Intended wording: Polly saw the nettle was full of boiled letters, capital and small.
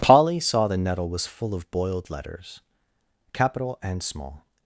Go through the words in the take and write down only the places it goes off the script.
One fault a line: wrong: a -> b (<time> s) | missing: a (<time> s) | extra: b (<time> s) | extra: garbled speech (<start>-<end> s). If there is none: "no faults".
no faults